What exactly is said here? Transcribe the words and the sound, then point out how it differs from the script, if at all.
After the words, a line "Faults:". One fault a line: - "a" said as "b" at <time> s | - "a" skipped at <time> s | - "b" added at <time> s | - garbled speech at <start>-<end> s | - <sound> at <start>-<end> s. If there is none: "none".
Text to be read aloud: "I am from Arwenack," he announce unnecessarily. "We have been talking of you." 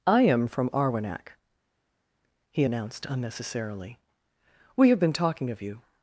"I am from Arwenack," he announced unnecessarily. "We have been talking of you."
Faults:
- "announce" said as "announced" at 2.6 s